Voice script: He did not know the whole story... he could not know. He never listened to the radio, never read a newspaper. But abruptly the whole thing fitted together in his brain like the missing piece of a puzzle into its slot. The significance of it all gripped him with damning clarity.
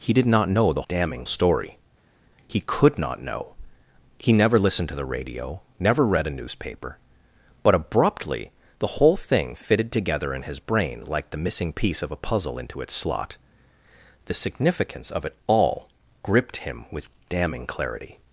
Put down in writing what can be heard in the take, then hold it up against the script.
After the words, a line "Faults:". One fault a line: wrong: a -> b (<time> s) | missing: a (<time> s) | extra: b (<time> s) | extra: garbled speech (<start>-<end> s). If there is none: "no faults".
He did not know the damning story... he could not know. He never listened to the radio, never read a newspaper. But abruptly the whole thing fitted together in his brain like the missing piece of a puzzle into its slot. The significance of it all gripped him with damning clarity.
Faults:
wrong: whole -> damning (0.9 s)